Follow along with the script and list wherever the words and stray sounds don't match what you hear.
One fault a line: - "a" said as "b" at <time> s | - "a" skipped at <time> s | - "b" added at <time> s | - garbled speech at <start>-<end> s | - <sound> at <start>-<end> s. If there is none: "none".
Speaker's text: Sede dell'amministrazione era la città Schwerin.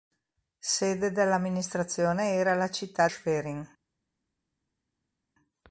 none